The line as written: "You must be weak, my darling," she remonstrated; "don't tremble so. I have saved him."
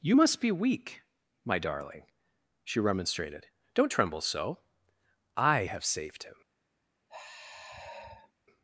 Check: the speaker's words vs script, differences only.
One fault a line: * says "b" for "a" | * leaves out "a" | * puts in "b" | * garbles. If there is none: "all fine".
all fine